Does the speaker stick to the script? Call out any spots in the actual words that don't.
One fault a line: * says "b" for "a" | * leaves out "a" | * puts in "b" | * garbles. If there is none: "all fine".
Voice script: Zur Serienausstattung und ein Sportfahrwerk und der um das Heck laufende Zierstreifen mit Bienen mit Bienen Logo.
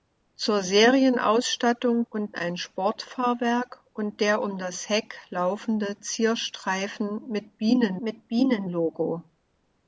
all fine